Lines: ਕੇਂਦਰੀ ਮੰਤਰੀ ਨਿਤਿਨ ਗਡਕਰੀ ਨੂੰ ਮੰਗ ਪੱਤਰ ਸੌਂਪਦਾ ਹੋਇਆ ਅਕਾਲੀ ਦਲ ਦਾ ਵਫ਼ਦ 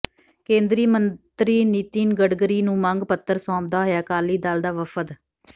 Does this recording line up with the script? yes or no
yes